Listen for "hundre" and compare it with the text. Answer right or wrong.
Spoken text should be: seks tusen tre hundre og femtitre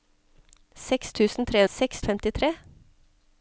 wrong